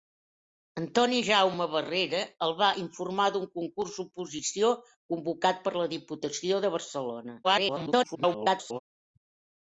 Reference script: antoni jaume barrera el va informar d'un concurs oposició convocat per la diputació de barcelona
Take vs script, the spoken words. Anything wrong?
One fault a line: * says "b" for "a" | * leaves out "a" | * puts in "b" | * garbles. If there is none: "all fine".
* garbles